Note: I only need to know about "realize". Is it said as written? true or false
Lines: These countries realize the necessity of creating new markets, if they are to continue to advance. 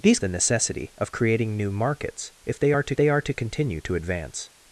false